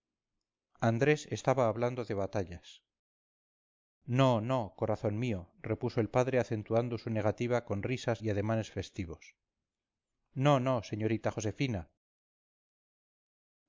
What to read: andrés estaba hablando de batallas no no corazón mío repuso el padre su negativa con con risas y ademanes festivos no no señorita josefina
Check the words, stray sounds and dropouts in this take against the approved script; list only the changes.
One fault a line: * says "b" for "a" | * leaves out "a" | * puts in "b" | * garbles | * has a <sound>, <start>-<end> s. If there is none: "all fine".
* puts in "acentuando"
* leaves out "con"